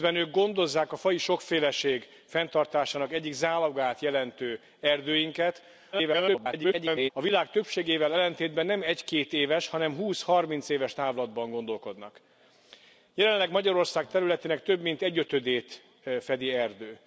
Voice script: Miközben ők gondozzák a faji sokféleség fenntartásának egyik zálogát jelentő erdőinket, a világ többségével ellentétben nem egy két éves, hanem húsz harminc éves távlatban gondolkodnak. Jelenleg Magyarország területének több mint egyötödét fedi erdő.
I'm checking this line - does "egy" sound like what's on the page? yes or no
yes